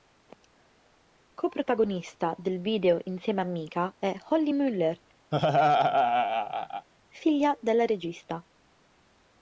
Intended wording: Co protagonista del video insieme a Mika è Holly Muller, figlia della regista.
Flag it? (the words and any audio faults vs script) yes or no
yes